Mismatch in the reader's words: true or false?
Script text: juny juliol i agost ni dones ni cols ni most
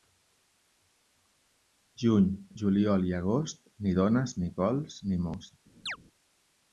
false